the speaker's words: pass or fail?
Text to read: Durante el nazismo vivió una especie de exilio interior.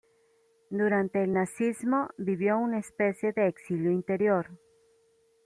pass